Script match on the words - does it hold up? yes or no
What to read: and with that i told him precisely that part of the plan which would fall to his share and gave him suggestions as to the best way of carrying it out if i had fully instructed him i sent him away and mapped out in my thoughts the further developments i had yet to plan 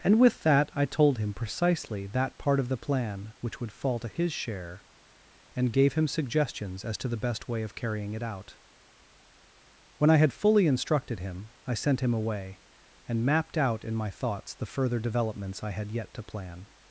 no